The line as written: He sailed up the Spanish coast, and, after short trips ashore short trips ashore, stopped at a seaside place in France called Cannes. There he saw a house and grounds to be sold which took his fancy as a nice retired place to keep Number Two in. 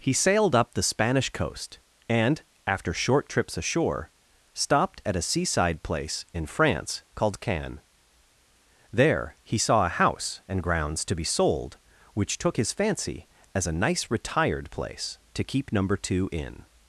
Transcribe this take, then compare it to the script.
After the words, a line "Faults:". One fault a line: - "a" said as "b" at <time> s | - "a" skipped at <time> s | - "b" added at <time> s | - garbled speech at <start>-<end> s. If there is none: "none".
He sailed up the Spanish coast, and, after short trips ashore, stopped at a seaside place in France called Cannes. There he saw a house and grounds to be sold which took his fancy as a nice retired place to keep Number Two in.
Faults:
- "short trips ashore" skipped at 4.1 s